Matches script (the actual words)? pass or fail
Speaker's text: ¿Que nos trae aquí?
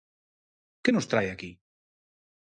pass